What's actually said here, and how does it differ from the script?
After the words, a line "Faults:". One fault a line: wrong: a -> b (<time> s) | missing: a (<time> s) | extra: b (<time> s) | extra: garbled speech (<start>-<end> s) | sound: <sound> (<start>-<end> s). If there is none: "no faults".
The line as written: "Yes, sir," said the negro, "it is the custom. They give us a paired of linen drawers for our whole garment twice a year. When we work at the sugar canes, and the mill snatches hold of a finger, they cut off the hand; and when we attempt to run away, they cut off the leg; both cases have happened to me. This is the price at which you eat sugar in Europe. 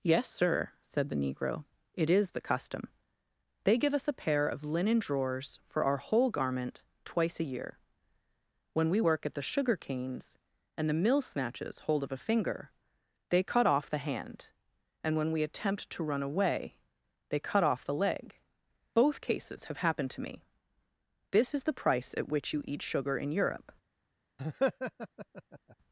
"Yes, sir," said the negro, "it is the custom. They give us a pair of linen drawers for our whole garment twice a year. When we work at the sugar canes, and the mill snatches hold of a finger, they cut off the hand; and when we attempt to run away, they cut off the leg; both cases have happened to me. This is the price at which you eat sugar in Europe.
Faults:
wrong: paired -> pair (4.2 s)
sound: laugh (24.4-25.8 s)